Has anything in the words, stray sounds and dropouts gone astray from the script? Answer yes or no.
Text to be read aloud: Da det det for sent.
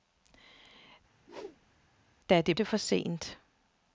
yes